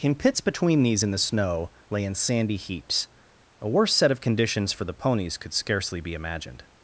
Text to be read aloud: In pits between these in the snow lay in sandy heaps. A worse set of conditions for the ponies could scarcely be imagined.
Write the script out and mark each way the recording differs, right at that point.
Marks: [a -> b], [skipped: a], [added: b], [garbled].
In pits between these in the snow lay in sandy heaps. A worse set of conditions for the ponies could scarcely be imagined.